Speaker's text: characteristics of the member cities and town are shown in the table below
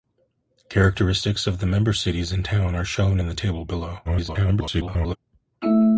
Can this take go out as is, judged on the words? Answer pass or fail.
fail